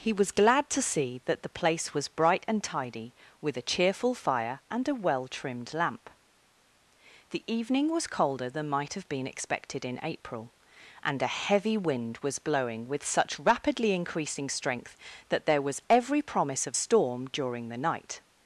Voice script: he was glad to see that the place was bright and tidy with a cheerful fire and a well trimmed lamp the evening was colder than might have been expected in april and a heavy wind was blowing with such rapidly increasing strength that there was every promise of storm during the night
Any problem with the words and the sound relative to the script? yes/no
no